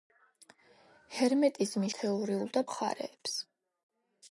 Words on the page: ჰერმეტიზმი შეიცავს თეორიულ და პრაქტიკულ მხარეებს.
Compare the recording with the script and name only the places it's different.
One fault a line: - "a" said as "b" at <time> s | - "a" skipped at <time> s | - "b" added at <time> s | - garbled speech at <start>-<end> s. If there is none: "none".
- "შეიცავს" skipped at 1.9 s
- "პრაქტიკულ" skipped at 2.7 s